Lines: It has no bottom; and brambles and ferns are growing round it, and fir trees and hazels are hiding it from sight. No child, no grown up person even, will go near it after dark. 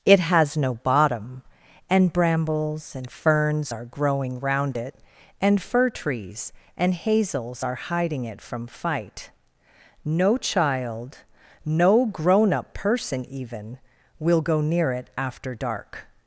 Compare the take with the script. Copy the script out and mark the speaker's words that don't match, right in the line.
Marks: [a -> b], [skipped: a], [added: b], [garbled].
It has no bottom; and brambles and ferns are growing round it, and fir trees and hazels are hiding it from [sight. -> fight] No child, no grown up person even, will go near it after dark.